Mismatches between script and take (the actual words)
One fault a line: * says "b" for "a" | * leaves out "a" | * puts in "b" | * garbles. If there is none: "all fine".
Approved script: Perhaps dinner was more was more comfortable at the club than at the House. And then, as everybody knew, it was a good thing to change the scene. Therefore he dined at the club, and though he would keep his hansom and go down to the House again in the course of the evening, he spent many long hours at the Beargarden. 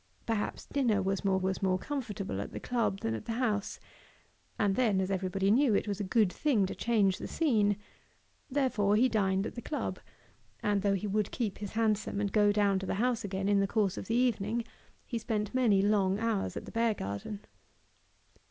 all fine